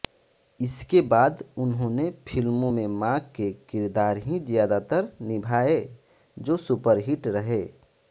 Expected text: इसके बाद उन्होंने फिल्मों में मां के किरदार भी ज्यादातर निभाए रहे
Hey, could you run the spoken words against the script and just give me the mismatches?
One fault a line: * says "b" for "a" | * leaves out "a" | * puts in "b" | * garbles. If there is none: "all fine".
* says "ही" for "भी"
* puts in "जो सुपरहिट"